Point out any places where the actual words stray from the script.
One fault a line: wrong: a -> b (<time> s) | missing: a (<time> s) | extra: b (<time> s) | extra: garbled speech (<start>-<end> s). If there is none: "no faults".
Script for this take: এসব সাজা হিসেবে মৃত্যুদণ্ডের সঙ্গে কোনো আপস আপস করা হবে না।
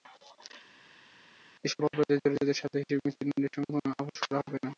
extra: অপরাধে জড়িতদের (1.8 s)
missing: আপস (4.2 s)